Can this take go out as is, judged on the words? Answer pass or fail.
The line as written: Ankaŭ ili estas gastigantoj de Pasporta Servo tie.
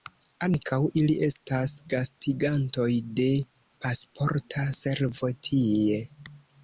pass